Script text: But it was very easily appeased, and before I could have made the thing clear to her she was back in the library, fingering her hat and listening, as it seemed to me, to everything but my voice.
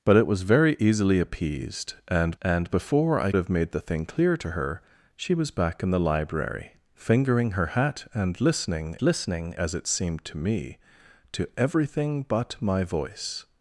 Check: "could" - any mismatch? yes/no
yes